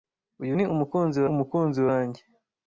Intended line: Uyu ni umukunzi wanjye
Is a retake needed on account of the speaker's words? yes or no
yes